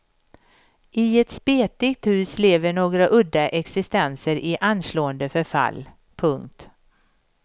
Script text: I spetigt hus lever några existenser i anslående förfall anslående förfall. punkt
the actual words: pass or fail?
fail